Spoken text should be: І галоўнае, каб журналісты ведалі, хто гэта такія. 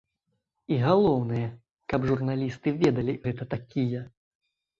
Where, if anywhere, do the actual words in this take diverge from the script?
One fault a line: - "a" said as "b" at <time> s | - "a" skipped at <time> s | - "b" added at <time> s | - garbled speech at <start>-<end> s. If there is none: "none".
- "хто" skipped at 3.1 s